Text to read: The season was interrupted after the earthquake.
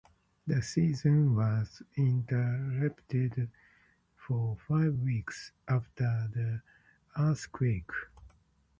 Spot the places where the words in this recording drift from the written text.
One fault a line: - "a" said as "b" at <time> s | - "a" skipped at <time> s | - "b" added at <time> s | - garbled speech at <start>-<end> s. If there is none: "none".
- "for five weeks" added at 4.2 s